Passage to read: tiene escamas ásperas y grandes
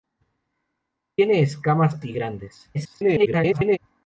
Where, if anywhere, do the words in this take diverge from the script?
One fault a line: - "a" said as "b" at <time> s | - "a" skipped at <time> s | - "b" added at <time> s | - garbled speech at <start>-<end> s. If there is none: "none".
- "ásperas" skipped at 2.0 s
- garbled speech at 2.7-3.8 s